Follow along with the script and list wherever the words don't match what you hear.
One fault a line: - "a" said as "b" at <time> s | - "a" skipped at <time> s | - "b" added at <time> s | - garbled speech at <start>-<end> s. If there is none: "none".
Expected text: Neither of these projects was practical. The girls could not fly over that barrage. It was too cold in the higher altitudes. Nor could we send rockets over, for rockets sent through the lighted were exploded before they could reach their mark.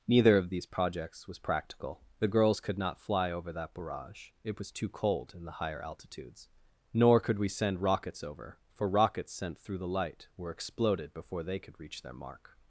- "lighted" said as "light" at 9.9 s